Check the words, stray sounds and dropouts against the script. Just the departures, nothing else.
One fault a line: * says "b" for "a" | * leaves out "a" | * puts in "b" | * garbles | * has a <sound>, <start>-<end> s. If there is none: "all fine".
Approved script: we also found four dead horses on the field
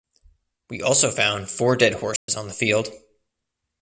* has a dropout, 2.2-2.3 s